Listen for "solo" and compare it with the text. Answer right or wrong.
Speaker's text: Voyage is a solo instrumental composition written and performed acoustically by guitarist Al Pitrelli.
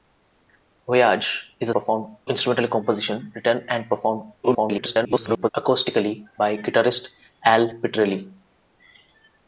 wrong